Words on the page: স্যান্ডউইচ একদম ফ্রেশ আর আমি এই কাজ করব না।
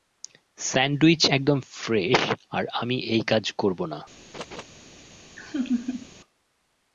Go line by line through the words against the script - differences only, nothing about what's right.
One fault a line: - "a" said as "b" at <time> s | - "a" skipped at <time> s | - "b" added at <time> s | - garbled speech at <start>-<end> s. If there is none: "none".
none